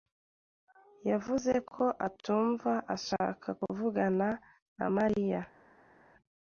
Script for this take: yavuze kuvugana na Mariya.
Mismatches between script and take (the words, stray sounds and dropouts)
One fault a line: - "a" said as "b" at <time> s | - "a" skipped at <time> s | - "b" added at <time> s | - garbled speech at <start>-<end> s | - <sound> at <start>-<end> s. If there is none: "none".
- "ko atumva ashaka" added at 1.7 s